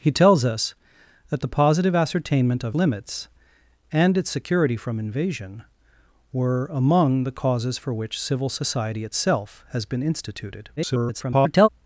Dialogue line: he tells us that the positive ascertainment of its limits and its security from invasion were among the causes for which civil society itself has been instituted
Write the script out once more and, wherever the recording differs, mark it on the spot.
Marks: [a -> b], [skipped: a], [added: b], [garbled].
he tells us that the positive ascertainment of [skipped: its] limits and its security from invasion were among the causes for which civil society itself has been instituted [garbled]